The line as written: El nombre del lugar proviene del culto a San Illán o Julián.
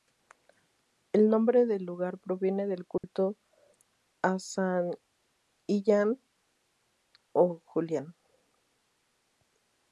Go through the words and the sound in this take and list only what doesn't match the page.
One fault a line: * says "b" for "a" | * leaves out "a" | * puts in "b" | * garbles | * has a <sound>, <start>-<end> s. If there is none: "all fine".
* has a dropout, 3.0-3.0 s